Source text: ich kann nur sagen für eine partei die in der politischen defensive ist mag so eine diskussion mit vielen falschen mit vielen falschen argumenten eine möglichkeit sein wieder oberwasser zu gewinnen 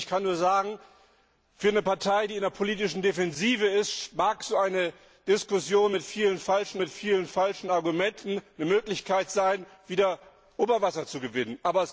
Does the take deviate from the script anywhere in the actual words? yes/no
no